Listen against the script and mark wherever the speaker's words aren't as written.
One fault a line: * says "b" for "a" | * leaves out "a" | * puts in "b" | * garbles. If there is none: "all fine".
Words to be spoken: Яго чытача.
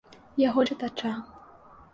all fine